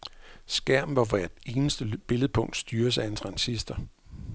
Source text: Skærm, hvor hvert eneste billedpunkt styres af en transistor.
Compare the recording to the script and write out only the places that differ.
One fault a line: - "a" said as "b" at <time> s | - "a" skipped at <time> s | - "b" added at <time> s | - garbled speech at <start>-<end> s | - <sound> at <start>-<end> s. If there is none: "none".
none